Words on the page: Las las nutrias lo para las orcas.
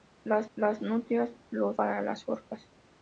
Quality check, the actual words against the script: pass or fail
pass